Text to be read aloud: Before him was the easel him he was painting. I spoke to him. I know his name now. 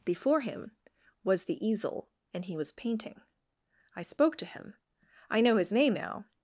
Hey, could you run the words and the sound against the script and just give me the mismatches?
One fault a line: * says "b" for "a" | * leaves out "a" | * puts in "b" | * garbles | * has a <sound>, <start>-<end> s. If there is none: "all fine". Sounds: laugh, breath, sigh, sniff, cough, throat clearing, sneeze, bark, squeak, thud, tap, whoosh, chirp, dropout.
* says "and" for "him"